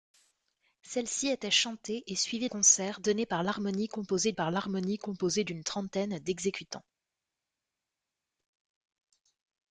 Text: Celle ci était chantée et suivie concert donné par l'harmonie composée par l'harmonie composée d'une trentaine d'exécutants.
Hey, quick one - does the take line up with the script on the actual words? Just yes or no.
yes